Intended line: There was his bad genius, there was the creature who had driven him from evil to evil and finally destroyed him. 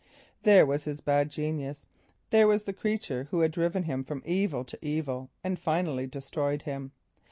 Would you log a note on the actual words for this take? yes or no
no